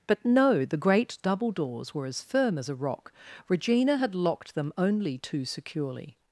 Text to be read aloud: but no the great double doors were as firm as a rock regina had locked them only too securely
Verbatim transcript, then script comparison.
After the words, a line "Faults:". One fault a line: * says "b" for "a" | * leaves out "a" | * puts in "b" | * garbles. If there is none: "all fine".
but no the great double doors were as firm as a rock regina had locked them only too securely
Faults:
all fine